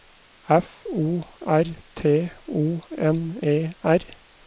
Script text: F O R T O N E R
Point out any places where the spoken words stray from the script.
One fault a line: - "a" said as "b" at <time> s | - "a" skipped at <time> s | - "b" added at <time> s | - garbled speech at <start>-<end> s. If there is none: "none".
none